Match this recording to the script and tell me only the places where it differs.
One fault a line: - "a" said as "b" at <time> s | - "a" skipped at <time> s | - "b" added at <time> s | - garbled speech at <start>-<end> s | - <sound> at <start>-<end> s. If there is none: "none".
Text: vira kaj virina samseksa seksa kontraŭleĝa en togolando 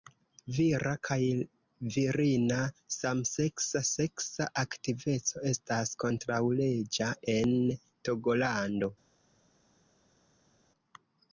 - "aktiveco estas" added at 4.6 s